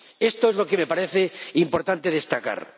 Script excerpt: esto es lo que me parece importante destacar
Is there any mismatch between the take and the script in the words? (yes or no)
no